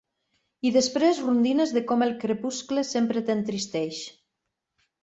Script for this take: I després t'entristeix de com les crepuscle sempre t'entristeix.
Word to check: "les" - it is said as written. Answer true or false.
false